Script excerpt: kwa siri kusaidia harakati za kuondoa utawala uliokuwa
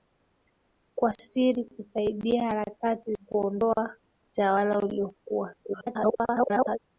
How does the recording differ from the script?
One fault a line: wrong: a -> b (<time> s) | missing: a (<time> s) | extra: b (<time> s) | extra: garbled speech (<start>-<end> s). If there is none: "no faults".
missing: za (3.1 s)
extra: garbled speech (5.6-6.8 s)